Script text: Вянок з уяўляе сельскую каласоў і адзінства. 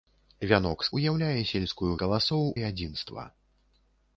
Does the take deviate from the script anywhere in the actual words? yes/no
no